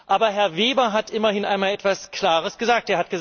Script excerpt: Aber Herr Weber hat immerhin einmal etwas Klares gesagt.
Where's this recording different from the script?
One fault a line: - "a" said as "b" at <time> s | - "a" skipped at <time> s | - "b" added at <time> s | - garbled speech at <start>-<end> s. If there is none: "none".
none